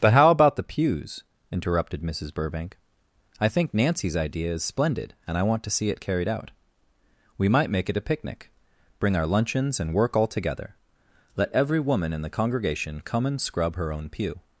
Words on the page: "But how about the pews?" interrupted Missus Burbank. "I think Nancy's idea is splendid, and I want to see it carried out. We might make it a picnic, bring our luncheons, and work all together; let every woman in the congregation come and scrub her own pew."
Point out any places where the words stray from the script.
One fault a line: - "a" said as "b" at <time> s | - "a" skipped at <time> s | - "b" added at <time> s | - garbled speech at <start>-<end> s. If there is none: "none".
none